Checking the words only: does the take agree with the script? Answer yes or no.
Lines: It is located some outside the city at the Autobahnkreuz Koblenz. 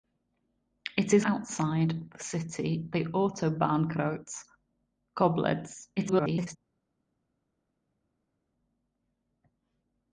no